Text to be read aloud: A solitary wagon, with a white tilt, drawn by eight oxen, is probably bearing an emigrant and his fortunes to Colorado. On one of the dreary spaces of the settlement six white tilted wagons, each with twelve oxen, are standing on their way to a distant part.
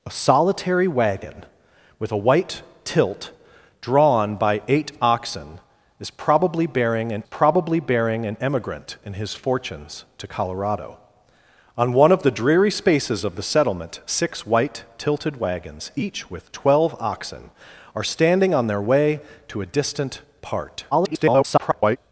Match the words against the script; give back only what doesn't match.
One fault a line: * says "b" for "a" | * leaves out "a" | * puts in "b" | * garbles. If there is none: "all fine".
* puts in "probably bearing an"
* garbles